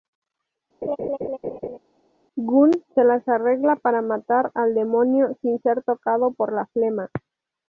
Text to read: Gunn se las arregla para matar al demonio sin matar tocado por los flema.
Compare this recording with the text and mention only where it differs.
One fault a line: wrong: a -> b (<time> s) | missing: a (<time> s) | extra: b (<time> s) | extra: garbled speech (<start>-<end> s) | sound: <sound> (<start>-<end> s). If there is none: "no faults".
sound: laugh (0.8-1.8 s)
wrong: matar -> ser (5.6 s)
wrong: los -> la (6.5 s)